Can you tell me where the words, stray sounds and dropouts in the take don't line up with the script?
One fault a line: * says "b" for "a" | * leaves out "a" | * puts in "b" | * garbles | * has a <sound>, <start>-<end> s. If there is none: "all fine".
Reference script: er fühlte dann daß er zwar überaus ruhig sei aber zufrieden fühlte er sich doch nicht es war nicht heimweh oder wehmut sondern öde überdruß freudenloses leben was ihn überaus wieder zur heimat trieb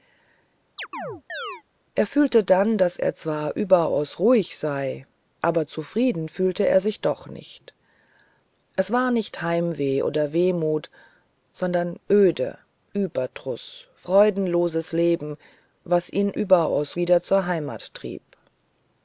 * has a chirp, 0.8-1.6 s